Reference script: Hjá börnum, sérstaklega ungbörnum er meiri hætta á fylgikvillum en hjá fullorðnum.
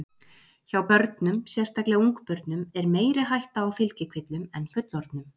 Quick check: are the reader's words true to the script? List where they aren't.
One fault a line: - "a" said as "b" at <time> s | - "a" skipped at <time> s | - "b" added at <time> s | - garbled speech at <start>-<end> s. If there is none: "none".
- "hjá" skipped at 4.7 s